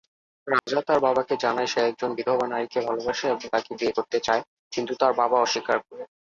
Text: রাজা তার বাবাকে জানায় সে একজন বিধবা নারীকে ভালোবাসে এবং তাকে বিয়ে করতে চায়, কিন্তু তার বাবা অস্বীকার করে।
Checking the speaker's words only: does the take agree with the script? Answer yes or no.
yes